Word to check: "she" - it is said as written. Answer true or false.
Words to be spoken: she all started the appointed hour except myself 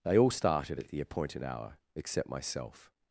false